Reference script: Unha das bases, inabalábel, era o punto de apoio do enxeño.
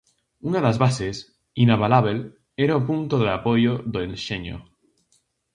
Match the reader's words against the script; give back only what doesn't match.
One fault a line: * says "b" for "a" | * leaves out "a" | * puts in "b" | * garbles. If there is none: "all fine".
all fine